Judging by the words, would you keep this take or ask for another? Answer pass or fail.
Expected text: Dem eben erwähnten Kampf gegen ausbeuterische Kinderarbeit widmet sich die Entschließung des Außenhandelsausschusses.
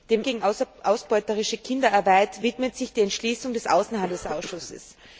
fail